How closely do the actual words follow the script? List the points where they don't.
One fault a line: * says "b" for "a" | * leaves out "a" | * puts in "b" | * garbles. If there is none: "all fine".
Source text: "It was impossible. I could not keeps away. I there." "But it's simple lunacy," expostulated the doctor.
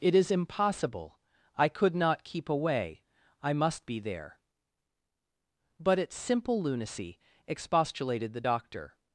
* says "is" for "was"
* says "keep" for "keeps"
* puts in "must be"